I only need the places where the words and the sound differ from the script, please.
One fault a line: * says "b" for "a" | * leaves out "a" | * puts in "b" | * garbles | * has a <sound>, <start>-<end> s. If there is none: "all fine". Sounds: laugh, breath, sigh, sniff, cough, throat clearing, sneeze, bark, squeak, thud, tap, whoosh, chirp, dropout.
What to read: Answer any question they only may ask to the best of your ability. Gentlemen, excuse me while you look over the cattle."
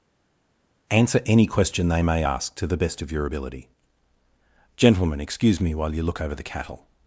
* leaves out "only"